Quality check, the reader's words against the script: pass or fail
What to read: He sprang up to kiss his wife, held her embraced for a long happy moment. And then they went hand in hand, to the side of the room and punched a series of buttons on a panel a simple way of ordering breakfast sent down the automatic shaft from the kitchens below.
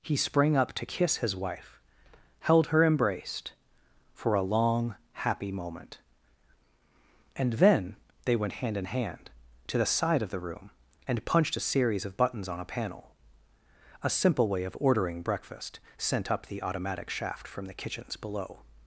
fail